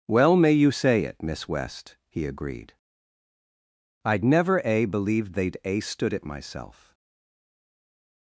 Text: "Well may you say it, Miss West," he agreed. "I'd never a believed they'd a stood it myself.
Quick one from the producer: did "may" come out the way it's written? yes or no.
yes